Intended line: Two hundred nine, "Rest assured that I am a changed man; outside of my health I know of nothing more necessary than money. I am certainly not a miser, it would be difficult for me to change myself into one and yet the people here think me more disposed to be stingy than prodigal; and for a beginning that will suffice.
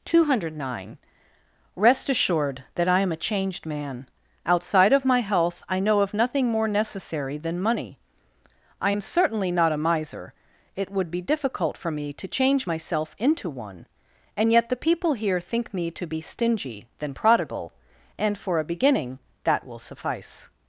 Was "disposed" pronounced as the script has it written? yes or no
no